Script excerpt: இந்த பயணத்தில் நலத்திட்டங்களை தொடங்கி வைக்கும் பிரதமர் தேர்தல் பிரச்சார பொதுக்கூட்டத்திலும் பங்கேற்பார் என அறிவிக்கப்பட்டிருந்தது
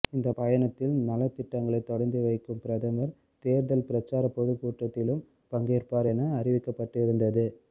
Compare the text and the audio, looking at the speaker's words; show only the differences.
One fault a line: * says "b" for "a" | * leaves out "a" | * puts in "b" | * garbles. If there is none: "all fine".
all fine